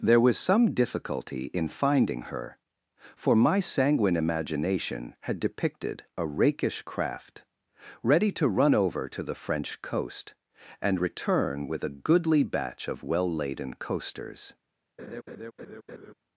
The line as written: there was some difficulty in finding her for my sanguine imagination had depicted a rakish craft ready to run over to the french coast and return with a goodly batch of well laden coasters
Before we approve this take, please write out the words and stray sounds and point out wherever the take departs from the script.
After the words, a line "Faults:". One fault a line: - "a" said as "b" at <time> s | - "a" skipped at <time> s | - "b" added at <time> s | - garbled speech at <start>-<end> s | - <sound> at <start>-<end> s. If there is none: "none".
there was some difficulty in finding her for my sanguine imagination had depicted a rakish craft ready to run over to the french coast and return with a goodly batch of well laden coasters
Faults:
- laugh at 15.0-16.1 s